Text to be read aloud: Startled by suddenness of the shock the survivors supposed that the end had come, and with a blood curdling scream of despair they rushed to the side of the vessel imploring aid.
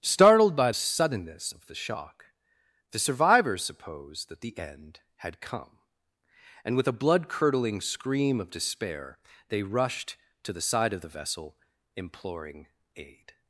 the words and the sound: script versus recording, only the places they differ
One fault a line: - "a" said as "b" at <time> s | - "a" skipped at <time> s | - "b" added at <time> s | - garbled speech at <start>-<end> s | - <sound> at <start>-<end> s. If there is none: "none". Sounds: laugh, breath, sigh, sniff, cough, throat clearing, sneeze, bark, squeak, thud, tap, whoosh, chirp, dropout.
none